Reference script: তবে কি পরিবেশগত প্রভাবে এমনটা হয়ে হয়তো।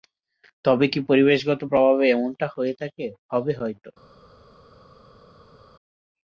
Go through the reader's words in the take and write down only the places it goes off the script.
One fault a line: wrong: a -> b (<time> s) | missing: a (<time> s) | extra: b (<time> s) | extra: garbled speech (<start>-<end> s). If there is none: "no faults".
extra: থাকে হবে (2.8 s)